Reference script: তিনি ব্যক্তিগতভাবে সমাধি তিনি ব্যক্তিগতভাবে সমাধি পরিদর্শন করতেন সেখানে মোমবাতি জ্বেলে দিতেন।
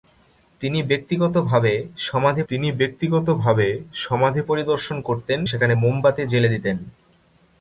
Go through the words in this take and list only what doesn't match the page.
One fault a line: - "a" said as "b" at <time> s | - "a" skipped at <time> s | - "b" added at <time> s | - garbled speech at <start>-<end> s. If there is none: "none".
none